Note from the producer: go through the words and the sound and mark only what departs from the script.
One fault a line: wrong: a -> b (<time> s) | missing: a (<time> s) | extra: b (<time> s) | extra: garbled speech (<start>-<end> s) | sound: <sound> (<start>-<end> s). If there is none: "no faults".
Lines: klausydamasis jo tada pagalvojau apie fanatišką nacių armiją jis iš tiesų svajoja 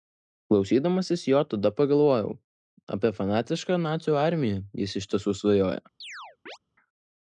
sound: chirp (6.0-6.6 s)